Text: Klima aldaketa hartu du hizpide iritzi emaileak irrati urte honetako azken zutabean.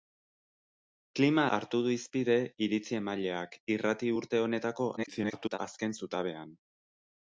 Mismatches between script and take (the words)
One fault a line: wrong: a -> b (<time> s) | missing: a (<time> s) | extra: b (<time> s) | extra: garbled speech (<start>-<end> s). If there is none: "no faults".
missing: aldaketa (1.4 s)
extra: garbled speech (5.0-5.6 s)